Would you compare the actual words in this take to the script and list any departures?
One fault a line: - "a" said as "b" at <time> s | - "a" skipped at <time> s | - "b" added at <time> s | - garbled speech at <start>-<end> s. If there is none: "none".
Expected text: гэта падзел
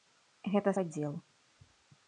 none